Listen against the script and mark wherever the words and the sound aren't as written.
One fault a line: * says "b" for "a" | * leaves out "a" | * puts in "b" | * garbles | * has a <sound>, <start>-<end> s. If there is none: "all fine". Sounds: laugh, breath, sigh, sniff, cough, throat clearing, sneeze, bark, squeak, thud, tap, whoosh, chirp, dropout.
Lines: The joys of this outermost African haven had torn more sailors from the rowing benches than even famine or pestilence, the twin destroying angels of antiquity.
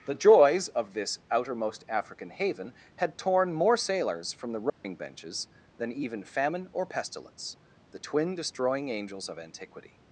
* has a dropout, 4.7-4.8 s